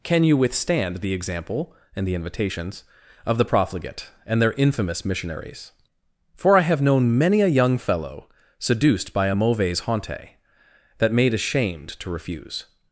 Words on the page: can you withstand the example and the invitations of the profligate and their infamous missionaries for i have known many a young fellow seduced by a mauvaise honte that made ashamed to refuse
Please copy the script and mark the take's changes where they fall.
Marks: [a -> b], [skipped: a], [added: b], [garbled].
can you withstand the example and the invitations of the profligate and their infamous missionaries for i have known many a young fellow seduced by a mauvaise honte that made ashamed to refuse